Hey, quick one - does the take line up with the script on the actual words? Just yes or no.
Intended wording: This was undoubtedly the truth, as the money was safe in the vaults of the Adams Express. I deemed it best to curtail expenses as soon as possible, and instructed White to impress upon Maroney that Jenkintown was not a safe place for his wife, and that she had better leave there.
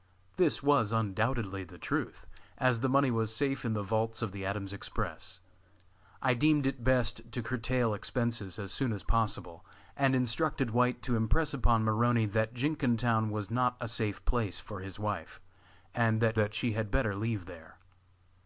no